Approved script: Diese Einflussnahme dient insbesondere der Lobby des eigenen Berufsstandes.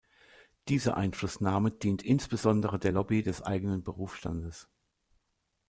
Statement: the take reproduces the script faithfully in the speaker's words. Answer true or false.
true